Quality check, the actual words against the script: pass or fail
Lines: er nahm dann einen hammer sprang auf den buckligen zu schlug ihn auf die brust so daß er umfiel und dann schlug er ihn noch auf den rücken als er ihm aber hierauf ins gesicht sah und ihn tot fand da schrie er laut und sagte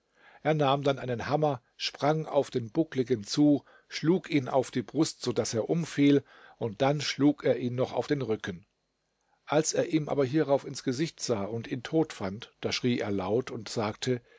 pass